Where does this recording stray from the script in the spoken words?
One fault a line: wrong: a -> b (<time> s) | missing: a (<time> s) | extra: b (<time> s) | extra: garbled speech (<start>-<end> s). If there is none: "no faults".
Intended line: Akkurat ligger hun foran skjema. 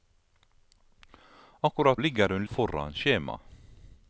no faults